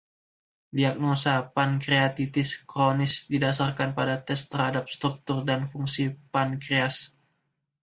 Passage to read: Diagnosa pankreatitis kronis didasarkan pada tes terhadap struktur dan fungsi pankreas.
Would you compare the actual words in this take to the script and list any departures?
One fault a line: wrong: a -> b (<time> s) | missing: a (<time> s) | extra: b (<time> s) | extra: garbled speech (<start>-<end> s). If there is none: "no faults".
no faults